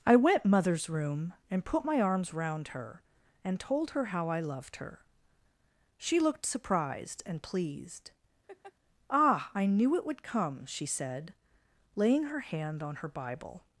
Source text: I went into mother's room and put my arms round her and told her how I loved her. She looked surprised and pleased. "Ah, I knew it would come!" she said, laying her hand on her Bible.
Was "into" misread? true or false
true